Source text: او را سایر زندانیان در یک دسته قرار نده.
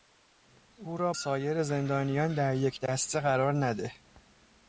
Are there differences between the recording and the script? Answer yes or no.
no